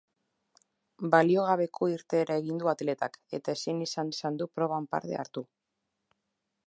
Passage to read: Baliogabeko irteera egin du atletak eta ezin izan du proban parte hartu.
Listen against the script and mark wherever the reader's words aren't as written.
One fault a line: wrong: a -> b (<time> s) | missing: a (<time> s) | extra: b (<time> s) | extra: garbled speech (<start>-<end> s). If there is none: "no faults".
extra: izan (4.2 s)